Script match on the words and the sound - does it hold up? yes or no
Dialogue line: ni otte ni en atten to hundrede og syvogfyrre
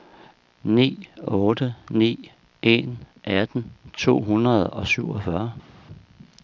yes